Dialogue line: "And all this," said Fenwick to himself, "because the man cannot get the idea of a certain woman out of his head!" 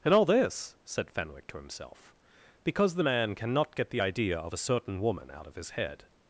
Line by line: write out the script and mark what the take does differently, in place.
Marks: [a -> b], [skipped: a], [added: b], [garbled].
"And all this," said Fenwick to himself, "because the man cannot get the idea of a certain woman out of his head!"